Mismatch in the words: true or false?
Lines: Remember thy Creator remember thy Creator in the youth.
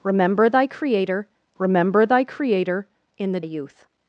false